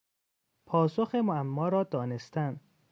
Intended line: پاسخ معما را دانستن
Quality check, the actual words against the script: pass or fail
pass